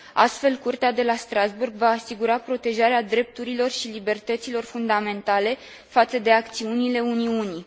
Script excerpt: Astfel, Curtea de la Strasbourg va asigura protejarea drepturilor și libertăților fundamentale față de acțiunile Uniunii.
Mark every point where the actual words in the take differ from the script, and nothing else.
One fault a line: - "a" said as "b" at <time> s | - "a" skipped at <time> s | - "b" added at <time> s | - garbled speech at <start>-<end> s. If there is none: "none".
none